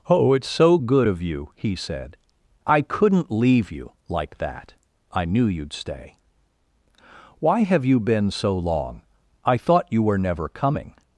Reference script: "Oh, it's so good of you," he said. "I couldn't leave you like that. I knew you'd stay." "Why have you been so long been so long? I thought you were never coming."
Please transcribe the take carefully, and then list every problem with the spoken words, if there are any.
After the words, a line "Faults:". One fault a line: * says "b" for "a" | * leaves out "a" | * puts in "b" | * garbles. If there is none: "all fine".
"Oh, it's so good of you," he said. "I couldn't leave you like that. I knew you'd stay." "Why have you been so long? I thought you were never coming."
Faults:
* leaves out "been so long"